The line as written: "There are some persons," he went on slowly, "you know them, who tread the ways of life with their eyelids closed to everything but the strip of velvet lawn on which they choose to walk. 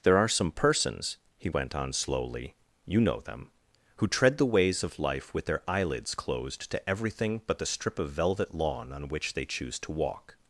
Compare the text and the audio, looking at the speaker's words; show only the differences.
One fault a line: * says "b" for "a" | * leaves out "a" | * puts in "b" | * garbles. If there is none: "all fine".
all fine